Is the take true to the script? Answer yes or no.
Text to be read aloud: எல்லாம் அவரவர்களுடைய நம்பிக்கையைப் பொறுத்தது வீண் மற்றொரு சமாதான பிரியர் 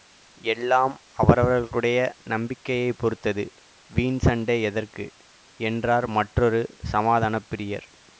no